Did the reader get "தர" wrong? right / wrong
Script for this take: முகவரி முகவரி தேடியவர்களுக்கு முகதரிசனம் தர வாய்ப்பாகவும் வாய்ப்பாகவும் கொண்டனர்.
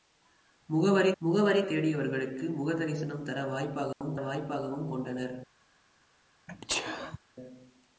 right